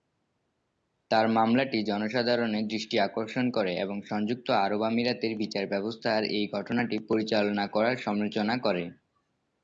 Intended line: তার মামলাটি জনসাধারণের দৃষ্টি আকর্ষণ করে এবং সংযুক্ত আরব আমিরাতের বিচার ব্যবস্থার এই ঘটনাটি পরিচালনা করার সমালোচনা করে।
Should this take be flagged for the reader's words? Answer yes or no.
no